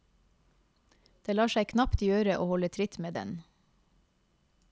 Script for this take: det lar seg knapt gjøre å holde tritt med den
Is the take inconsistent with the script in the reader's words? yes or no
no